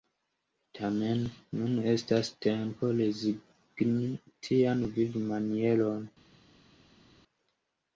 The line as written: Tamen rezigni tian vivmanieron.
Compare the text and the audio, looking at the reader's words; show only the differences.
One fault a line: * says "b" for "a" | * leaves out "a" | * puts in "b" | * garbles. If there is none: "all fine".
* puts in "nun estas tempo"